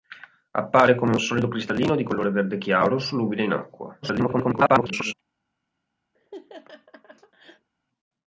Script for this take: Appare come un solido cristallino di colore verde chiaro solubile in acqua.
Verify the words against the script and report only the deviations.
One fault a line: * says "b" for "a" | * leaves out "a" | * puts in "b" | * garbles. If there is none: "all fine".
* garbles